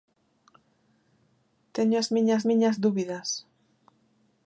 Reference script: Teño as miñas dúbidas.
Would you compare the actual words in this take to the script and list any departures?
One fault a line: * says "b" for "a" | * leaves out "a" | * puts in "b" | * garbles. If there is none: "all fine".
* puts in "miñas"